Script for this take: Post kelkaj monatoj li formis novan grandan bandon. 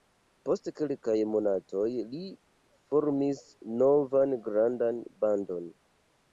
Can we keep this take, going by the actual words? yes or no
yes